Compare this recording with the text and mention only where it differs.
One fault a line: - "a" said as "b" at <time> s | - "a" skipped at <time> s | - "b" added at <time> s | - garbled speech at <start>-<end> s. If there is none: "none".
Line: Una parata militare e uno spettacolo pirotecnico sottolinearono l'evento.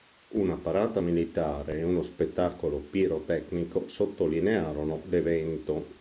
none